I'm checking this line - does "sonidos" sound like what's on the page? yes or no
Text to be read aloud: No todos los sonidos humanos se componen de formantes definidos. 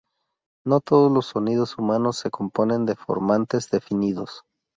yes